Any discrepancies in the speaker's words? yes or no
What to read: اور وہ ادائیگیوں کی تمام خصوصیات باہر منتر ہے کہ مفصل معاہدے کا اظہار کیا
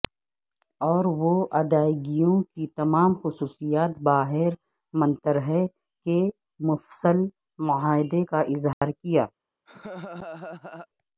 no